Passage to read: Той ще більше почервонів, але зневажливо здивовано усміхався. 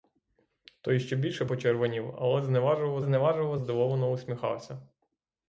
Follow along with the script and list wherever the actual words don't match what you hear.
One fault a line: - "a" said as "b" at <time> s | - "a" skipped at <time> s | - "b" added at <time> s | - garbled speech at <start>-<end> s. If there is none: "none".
- "зневажливо" added at 3.0 s